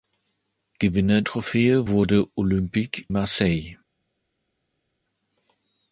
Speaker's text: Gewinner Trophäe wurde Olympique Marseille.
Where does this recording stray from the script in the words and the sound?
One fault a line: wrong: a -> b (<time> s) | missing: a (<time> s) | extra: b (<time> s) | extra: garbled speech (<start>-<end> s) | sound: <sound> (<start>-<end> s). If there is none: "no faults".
no faults